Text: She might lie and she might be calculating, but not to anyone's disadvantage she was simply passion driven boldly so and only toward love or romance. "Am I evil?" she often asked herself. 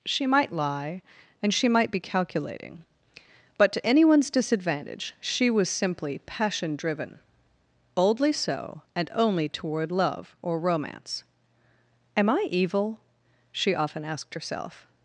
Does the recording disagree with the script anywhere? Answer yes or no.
yes